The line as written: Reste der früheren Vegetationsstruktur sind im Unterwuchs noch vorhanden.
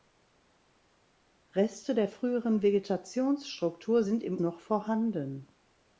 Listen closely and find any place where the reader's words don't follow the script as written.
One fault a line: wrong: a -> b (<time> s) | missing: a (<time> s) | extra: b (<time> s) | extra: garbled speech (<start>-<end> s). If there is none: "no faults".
missing: Unterwuchs (4.4 s)